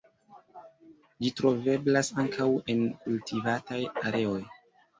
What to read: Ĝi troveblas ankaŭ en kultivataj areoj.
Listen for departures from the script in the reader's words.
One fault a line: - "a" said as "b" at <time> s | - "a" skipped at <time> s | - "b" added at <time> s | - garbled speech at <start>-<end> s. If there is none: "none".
none